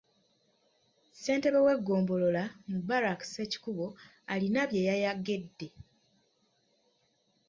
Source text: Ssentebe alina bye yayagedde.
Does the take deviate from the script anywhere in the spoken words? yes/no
yes